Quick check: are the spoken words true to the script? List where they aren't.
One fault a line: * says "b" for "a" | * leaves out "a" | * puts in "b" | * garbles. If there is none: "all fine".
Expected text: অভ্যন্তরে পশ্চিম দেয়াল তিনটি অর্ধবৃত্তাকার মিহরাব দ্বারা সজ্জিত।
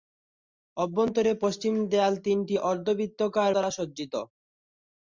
* leaves out "মিহরাব"